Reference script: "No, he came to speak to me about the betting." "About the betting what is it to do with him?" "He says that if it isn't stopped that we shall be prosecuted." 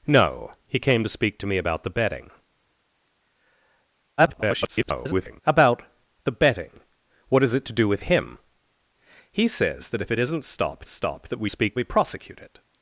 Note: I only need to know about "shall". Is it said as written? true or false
false